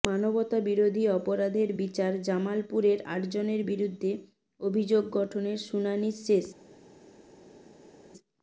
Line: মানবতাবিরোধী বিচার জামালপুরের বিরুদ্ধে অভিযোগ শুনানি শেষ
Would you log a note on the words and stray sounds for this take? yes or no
yes